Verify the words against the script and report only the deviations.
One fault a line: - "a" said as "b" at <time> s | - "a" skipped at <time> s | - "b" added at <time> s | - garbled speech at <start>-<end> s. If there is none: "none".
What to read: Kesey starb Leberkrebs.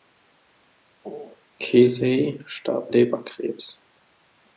none